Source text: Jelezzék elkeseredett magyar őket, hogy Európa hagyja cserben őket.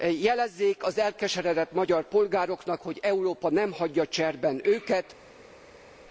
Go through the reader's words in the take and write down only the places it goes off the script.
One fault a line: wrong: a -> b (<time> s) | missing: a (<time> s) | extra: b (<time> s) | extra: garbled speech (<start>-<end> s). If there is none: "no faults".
extra: az (0.8 s)
wrong: őket -> polgároknak (2.1 s)
extra: nem (3.5 s)